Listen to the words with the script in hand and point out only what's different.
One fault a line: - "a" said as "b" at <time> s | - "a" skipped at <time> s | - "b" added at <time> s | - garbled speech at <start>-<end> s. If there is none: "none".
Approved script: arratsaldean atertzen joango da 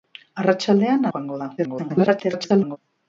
- "atertzen" skipped at 1.1 s
- garbled speech at 1.6-2.8 s